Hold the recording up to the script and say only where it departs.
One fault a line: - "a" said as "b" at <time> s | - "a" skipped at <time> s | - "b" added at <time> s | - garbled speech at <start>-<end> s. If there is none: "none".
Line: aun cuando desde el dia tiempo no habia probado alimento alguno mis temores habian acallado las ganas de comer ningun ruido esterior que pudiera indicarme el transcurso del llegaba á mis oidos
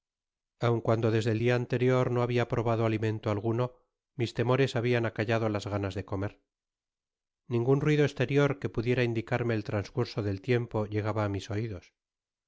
- "tiempo" said as "anterior" at 1.6 s
- "tiempo" added at 10.5 s